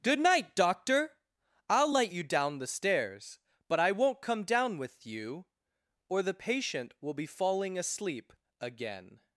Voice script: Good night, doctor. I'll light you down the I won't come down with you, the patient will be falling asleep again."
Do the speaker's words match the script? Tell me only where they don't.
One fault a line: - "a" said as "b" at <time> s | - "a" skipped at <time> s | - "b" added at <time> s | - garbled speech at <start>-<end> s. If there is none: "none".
- "stairs but" added at 2.7 s
- "or" added at 6.1 s